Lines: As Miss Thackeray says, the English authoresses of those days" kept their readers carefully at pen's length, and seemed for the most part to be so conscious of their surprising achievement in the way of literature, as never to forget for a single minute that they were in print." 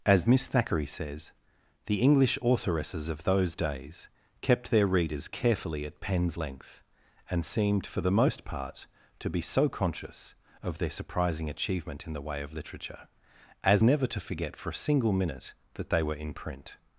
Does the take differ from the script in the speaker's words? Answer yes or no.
no